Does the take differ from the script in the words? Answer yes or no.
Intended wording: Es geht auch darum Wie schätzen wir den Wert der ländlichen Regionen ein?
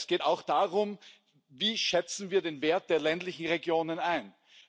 no